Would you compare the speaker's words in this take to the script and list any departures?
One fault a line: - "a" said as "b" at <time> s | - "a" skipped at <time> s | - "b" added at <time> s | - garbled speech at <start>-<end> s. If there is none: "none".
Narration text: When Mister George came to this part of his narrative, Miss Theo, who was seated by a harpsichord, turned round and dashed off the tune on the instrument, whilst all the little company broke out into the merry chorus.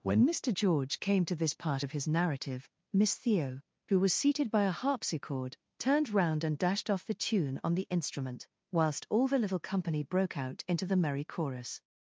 none